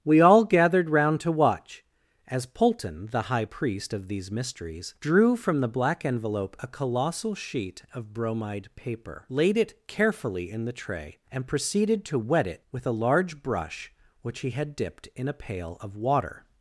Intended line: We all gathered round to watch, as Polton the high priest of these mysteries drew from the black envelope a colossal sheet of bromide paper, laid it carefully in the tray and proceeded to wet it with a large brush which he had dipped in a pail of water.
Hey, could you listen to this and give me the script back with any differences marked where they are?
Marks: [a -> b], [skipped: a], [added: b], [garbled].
We all gathered round to watch, as Polton the high priest of these mysteries drew from the black envelope a colossal sheet of bromide paper, laid it carefully in the tray and proceeded to wet it with a large brush which he had dipped in a pail of water.